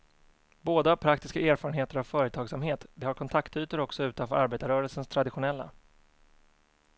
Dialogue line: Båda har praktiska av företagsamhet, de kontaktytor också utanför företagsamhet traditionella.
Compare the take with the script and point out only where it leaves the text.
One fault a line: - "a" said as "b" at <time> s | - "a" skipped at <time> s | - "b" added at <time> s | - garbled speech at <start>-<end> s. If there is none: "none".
- "erfarenheter" added at 1.4 s
- "har" added at 3.0 s
- "företagsamhet" said as "arbetarrörelsens" at 4.3 s